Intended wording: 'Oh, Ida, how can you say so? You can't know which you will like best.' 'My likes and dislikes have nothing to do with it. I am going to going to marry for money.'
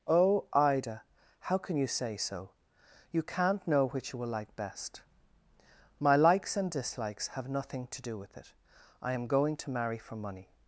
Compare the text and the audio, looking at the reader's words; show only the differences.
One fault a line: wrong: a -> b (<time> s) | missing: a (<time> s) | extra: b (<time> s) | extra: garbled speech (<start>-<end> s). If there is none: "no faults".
missing: going to (9.7 s)